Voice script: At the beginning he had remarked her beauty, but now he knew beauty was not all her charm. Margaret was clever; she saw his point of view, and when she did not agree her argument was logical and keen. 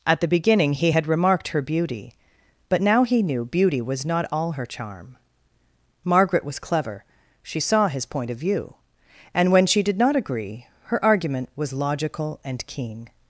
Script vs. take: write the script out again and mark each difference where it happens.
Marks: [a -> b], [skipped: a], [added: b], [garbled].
At the beginning he had remarked her beauty, but now he knew beauty was not all her charm. Margaret was clever; she saw his point of view, and when she did not agree her argument was logical and keen.